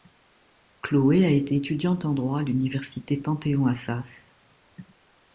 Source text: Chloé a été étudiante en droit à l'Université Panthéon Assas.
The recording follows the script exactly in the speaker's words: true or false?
true